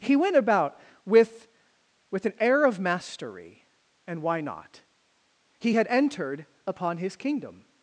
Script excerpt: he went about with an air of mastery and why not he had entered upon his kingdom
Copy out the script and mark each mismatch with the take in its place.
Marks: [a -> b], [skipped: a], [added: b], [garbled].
he went about with [added: with] an air of mastery and why not he had entered upon his kingdom